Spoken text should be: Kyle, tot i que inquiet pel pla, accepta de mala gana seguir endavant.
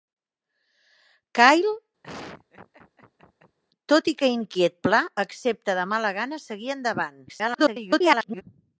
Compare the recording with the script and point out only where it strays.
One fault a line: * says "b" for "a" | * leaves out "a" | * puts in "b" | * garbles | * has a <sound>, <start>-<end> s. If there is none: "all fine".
* has a laugh, 2.0-3.6 s
* leaves out "pel"
* garbles